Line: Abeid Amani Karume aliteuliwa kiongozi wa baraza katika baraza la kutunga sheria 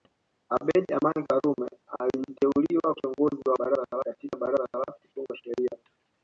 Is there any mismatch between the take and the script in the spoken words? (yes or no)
no